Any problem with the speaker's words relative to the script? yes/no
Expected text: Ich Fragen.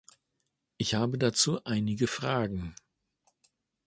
yes